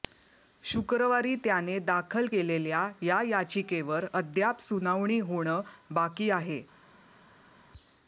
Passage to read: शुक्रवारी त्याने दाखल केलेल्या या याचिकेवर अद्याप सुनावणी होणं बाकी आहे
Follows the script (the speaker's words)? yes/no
yes